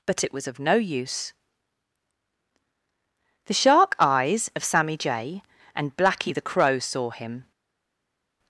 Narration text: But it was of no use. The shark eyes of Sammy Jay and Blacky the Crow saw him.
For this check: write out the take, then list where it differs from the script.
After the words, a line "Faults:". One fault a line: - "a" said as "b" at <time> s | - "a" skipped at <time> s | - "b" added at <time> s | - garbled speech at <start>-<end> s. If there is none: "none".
But it was of no use. The shark eyes of Sammy Jay and Blacky the Crow saw him.
Faults:
none